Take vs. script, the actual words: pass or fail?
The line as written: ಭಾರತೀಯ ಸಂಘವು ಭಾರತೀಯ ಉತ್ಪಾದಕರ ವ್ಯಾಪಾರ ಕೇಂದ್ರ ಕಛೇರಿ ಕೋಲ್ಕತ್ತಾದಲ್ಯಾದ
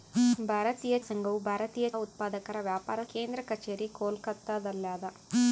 pass